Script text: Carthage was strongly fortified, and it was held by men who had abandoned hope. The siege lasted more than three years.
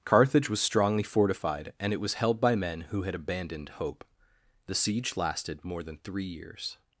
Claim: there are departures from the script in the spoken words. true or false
false